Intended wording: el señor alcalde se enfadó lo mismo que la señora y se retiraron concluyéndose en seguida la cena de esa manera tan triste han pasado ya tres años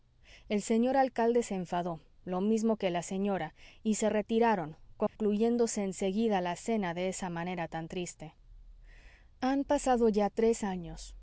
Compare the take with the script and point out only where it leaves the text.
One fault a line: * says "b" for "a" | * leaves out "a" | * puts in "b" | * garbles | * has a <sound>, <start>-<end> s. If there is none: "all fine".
* has a dropout, 5.1-5.2 s